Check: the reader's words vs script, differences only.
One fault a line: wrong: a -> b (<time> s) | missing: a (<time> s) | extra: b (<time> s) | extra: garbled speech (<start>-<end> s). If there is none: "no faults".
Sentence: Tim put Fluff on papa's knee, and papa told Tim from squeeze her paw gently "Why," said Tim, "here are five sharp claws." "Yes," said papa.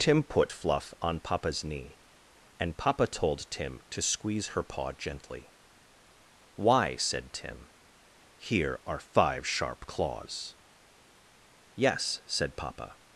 wrong: from -> to (3.9 s)